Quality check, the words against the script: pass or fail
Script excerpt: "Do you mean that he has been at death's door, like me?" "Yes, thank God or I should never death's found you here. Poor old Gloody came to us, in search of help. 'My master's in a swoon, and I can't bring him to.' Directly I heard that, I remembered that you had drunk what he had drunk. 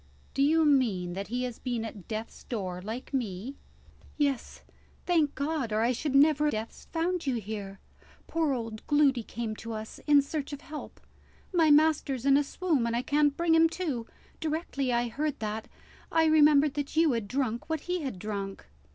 pass